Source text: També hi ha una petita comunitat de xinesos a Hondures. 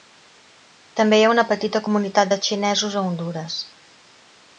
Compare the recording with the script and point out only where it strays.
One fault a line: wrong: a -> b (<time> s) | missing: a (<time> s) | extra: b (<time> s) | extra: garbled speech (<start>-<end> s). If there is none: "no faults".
no faults